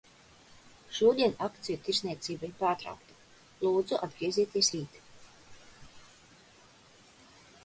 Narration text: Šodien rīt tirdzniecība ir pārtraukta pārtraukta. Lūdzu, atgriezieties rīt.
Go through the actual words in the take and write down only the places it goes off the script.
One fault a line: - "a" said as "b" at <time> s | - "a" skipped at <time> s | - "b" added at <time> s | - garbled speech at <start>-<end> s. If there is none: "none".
- "rīt" said as "akciju" at 1.5 s
- "pārtraukta" skipped at 3.2 s